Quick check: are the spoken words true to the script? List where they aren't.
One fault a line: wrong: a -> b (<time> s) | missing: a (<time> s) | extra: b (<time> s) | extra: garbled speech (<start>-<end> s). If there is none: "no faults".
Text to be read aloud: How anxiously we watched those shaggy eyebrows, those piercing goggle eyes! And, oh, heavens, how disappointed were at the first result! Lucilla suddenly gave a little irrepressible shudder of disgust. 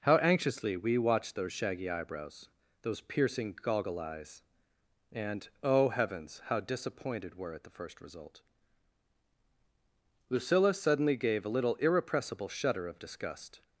no faults